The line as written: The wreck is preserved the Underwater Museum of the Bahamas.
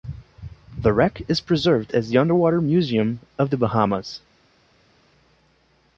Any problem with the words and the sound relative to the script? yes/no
yes